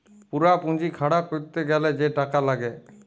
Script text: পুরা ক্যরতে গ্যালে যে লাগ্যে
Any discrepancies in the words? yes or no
yes